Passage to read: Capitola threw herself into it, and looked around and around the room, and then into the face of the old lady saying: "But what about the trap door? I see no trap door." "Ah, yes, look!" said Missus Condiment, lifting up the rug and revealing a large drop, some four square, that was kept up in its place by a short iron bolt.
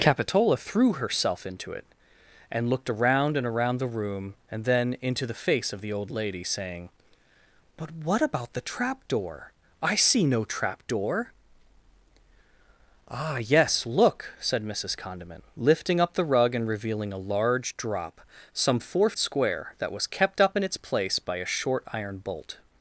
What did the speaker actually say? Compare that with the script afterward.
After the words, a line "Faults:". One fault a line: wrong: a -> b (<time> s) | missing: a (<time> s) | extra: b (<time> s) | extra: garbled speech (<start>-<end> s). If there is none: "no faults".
Capitola threw herself into it, and looked around and around the room, and then into the face of the old lady saying: "But what about the trap door? I see no trap door." "Ah, yes, look!" said Missus Condiment, lifting up the rug and revealing a large drop, some four square, that was kept up in its place by a short iron bolt.
Faults:
no faults